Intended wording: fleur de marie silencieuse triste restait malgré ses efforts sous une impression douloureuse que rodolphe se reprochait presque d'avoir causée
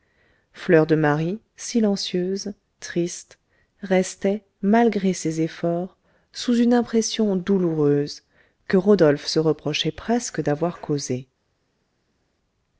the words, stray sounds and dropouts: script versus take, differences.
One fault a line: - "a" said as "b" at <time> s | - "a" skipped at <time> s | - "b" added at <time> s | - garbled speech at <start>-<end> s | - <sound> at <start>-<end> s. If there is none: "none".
none